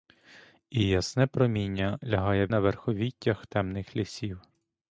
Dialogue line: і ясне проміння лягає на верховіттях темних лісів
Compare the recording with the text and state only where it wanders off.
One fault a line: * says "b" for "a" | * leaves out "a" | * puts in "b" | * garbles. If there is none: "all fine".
all fine